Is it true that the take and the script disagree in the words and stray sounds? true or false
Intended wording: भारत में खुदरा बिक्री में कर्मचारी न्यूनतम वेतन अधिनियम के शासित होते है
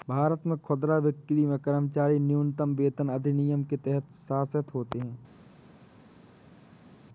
true